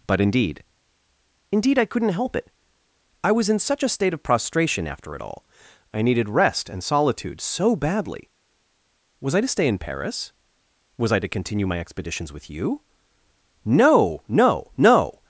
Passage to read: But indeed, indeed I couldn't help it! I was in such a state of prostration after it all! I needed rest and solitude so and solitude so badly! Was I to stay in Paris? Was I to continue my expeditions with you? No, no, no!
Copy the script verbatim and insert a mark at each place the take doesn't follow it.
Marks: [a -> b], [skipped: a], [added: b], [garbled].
But indeed, indeed I couldn't help it! I was in such a state of prostration after it all! I needed rest and solitude so [skipped: and solitude so] badly! Was I to stay in Paris? Was I to continue my expeditions with you? No, no, no!